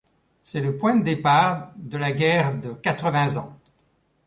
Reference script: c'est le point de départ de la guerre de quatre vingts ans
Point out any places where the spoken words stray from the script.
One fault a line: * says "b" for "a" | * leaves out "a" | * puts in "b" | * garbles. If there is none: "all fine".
all fine